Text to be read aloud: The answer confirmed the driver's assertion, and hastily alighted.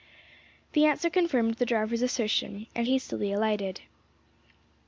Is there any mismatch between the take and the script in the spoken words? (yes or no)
no